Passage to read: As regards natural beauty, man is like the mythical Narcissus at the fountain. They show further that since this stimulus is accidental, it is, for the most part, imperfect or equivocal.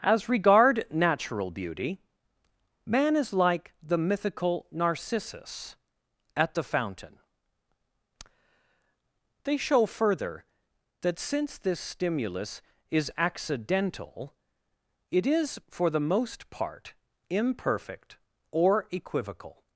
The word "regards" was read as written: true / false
false